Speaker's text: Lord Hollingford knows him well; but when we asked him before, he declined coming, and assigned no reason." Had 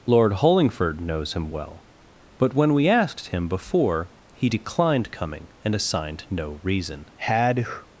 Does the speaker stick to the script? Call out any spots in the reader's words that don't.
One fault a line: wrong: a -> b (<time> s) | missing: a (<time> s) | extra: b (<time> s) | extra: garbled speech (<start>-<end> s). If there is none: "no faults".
no faults